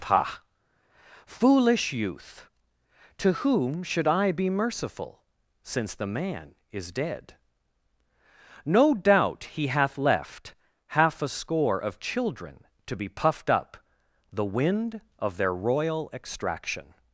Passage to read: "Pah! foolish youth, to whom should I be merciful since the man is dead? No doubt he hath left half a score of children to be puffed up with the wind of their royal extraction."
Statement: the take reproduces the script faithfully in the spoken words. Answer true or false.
false